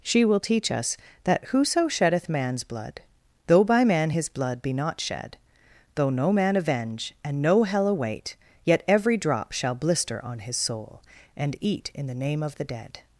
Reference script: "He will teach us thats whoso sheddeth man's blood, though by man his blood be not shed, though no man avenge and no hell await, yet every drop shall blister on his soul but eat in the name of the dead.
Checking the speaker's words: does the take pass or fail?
fail